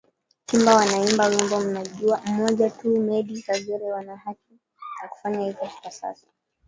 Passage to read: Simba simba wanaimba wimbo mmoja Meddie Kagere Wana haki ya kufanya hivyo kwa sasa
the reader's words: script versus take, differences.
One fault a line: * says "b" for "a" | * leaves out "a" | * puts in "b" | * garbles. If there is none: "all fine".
* leaves out "simba"
* puts in "tu"